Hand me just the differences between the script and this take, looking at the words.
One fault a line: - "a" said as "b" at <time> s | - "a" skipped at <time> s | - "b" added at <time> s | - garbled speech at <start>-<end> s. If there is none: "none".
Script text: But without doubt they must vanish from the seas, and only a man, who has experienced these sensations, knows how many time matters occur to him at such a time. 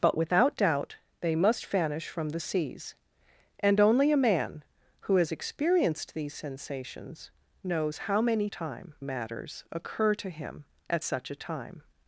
none